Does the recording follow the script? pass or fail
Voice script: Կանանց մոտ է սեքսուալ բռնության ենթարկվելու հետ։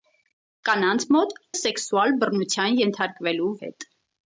pass